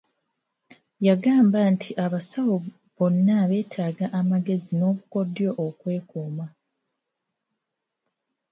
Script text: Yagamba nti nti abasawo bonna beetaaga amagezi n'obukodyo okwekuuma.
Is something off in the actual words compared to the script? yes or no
yes